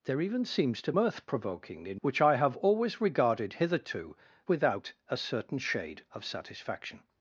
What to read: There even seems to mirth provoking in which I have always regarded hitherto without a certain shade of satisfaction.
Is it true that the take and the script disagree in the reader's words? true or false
false